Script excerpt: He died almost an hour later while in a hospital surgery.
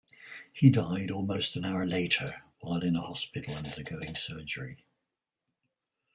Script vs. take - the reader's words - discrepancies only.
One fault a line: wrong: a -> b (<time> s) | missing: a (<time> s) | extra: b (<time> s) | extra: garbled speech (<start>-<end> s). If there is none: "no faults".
extra: undergoing (3.5 s)